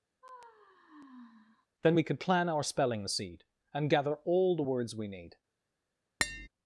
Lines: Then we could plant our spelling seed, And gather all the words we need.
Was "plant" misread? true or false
true